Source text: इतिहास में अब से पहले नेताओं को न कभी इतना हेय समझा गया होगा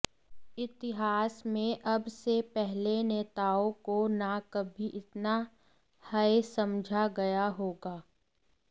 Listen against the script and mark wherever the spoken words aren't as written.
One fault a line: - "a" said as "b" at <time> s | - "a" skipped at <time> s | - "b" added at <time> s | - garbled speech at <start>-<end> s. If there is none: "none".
none